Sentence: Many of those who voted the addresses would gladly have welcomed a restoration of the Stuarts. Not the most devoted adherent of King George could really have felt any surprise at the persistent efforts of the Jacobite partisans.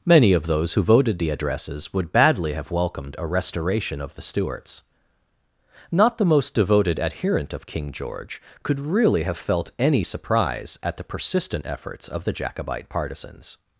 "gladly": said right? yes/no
no